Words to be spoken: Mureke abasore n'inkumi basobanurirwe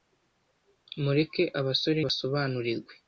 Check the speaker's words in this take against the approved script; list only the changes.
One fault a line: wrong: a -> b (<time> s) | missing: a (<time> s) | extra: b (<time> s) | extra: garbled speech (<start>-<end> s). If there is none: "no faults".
missing: n'inkumi (2.0 s)